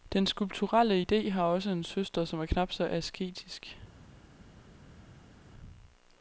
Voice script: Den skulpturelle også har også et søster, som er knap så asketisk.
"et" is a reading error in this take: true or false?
true